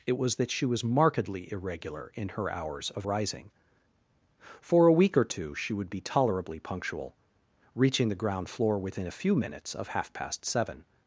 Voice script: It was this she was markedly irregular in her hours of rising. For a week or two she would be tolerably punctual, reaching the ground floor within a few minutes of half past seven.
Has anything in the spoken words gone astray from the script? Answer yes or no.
yes